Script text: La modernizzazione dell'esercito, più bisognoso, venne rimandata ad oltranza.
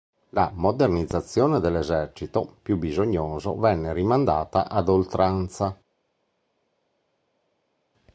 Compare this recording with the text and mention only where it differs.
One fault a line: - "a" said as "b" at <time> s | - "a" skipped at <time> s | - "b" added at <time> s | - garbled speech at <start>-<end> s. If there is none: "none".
none